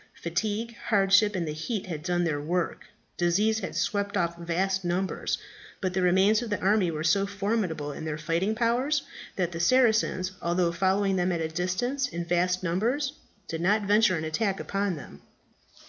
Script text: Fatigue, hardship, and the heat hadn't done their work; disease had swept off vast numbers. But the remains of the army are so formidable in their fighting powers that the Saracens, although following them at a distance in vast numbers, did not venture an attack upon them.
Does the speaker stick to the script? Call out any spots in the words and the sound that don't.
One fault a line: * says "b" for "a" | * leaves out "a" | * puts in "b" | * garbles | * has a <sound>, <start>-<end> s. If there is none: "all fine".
* says "had" for "hadn't"
* says "were" for "are"